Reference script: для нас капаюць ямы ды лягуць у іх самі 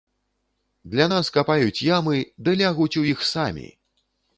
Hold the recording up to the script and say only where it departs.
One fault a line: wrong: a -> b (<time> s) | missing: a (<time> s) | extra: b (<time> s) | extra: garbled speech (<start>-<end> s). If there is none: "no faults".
no faults